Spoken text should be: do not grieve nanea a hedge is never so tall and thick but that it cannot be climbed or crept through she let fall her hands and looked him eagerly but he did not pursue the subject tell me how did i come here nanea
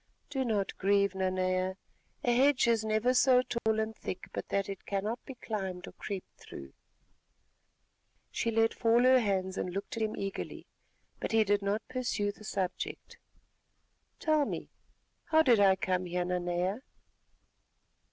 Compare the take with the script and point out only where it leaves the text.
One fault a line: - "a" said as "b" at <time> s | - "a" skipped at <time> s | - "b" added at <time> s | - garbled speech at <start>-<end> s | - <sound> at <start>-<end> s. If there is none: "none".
- dropout at 3.6-3.7 s